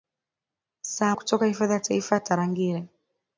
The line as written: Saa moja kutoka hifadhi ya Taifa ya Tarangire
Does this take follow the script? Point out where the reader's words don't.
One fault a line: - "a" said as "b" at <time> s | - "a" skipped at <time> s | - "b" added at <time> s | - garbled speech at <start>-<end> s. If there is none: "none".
- "moja" skipped at 1.1 s